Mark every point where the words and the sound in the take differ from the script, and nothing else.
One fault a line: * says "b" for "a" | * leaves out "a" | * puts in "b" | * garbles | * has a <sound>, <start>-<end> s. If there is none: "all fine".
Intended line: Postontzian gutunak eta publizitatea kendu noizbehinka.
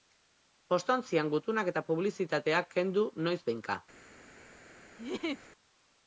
* has a laugh, 5.0-5.5 s